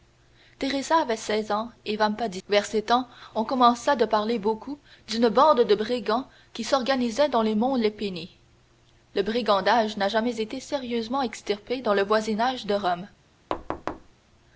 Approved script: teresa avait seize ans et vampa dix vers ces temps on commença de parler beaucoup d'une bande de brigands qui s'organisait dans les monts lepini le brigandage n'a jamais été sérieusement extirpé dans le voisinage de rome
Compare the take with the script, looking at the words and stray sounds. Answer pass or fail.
fail